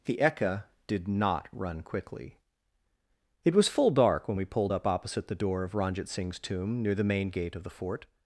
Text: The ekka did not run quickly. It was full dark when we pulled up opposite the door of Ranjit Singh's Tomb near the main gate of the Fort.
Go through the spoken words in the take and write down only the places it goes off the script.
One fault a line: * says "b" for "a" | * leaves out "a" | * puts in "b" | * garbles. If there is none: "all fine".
all fine